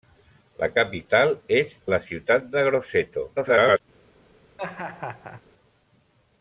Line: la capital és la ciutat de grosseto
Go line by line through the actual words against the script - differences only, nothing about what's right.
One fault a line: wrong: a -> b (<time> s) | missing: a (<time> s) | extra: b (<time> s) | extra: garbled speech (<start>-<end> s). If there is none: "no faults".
extra: garbled speech (3.4-3.8 s)